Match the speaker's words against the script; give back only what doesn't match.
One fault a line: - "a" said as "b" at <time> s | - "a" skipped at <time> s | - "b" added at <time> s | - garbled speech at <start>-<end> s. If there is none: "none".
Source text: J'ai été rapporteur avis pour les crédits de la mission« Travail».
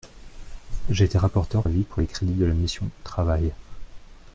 none